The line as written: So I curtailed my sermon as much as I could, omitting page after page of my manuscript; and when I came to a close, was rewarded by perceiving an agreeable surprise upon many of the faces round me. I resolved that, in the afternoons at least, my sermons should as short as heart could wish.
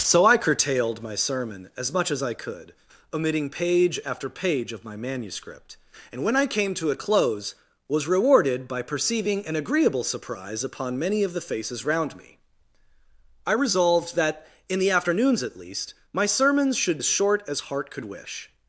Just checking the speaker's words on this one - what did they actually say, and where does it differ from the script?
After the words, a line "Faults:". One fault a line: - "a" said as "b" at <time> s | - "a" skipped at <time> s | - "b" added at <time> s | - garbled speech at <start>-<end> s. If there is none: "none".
So I curtailed my sermon as much as I could, omitting page after page of my manuscript; and when I came to a close, was rewarded by perceiving an agreeable surprise upon many of the faces round me. I resolved that, in the afternoons at least, my sermons should as short as heart could wish.
Faults:
none